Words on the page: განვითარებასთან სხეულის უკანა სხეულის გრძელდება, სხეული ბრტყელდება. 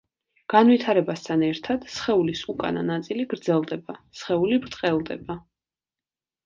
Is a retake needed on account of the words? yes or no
yes